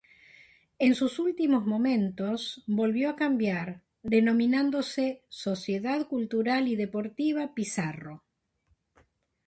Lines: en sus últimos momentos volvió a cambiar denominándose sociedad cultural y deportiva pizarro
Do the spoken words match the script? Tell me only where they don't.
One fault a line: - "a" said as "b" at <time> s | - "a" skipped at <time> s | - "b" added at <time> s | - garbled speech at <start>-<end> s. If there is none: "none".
none